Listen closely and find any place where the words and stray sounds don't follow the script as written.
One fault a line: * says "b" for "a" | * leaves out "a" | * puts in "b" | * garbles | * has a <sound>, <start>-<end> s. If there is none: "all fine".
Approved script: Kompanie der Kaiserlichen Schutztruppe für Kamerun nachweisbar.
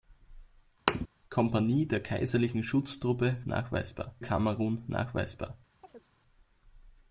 * has a thud, 0.9-1.1 s
* says "nachweisbar" for "für"
* has a chirp, 5.8-6.1 s